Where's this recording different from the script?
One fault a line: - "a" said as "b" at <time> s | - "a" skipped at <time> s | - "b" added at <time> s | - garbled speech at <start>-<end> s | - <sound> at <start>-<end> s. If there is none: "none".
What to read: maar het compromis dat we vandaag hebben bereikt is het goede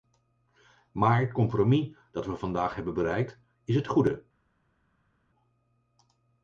none